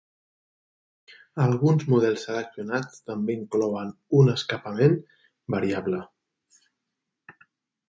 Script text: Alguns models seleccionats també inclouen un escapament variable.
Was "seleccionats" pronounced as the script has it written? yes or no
yes